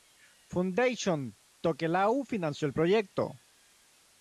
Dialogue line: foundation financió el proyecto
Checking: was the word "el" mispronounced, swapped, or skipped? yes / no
no